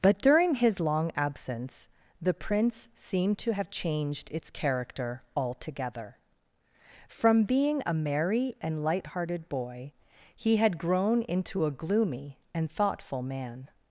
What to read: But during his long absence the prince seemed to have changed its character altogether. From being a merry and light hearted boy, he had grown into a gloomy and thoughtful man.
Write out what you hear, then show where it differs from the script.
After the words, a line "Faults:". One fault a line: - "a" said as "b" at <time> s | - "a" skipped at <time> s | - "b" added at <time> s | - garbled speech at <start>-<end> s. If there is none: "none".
But during his long absence the prince seemed to have changed its character altogether. From being a merry and light hearted boy, he had grown into a gloomy and thoughtful man.
Faults:
none